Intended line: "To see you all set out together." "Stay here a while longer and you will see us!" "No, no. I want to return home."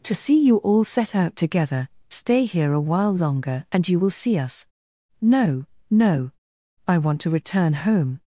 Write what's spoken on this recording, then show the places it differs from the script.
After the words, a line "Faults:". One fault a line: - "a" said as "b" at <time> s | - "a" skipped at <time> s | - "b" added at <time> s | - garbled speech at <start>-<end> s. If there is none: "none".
"To see you all set out together." "Stay here a while longer and you will see us!" "No, no. I want to return home."
Faults:
none